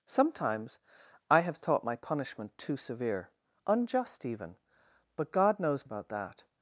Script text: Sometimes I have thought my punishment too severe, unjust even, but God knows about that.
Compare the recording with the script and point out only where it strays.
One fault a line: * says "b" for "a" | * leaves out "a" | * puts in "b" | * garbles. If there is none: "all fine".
all fine